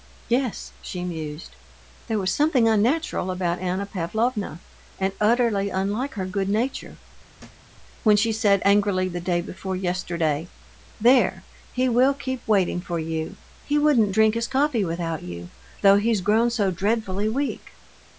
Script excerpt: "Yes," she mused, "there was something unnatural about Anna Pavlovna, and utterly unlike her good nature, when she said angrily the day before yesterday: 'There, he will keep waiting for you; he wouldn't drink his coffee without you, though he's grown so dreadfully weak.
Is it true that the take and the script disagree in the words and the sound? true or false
true